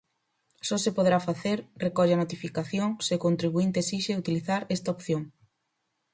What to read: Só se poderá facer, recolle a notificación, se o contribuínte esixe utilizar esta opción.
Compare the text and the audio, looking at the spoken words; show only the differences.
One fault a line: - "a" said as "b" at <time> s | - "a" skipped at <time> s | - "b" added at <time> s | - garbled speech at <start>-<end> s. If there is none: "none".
none